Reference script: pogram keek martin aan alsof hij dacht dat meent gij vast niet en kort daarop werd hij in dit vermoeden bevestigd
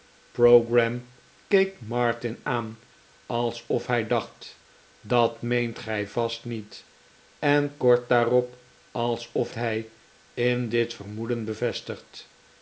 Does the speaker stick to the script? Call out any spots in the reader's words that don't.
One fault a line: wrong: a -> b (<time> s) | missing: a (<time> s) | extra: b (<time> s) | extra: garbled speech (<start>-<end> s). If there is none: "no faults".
wrong: werd -> alsof (8.9 s)